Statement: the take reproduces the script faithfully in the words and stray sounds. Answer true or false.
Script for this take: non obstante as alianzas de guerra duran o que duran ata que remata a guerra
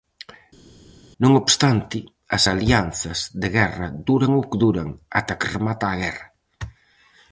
true